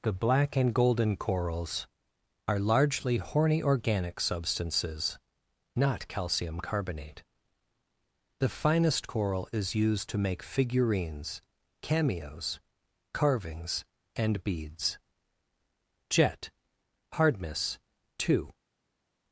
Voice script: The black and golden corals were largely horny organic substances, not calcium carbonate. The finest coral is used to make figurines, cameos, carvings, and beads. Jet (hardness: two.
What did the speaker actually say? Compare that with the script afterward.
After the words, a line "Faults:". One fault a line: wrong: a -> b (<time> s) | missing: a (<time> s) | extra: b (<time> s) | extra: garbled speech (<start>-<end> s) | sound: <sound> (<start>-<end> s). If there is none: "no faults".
The black and golden corals are largely horny organic substances, not calcium carbonate. The finest coral is used to make figurines, cameos, carvings, and beads. Jet (hardness: two.
Faults:
wrong: were -> are (2.5 s)